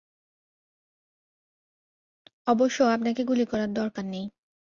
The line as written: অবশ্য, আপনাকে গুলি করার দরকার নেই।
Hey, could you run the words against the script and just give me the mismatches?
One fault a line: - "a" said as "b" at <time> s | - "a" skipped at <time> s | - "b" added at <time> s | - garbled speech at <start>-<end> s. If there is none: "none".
none